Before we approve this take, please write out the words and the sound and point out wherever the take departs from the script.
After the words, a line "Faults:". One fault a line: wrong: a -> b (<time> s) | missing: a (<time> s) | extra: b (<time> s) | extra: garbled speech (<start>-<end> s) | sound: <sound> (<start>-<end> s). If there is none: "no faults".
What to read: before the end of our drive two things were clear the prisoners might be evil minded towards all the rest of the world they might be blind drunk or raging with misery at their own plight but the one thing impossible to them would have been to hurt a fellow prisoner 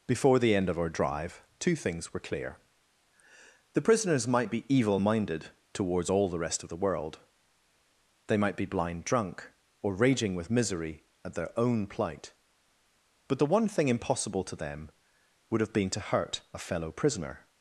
before the end of our drive two things were clear the prisoners might be evil minded towards all the rest of the world they might be blind drunk or raging with misery at their own plight but the one thing impossible to them would have been to hurt a fellow prisoner
Faults:
no faults